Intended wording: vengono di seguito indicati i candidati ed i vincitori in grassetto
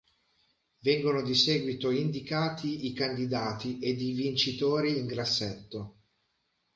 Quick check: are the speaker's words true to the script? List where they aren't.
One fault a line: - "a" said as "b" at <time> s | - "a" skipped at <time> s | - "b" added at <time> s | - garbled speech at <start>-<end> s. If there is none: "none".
none